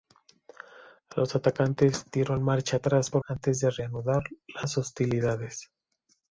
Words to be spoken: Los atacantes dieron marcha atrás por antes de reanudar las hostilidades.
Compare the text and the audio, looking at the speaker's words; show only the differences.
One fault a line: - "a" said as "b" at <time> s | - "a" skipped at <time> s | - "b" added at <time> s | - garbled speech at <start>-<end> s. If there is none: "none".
none